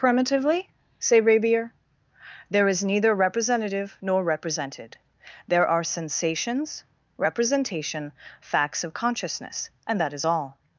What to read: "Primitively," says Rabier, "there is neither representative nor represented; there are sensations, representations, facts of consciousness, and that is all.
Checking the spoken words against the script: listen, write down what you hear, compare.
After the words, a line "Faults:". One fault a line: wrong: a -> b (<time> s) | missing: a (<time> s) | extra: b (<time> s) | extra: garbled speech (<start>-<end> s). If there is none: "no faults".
"Primitively," say Rabier, "there is neither representative nor represented; there are sensations, representation, facts of consciousness, and that is all.
Faults:
wrong: says -> say (1.0 s)
wrong: representations -> representation (7.2 s)